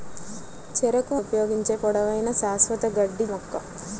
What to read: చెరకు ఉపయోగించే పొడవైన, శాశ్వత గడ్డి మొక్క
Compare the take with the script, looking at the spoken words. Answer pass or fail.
pass